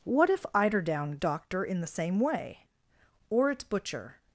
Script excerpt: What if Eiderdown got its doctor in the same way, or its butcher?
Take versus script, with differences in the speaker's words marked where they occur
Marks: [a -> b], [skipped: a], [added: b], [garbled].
What if Eiderdown [skipped: got its] doctor in the same way, or its butcher?